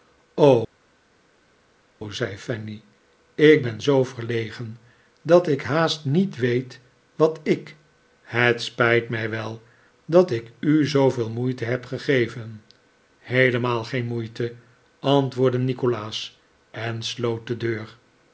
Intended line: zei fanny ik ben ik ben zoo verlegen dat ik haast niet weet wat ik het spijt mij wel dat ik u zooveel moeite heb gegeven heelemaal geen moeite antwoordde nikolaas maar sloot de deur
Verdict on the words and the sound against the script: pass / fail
fail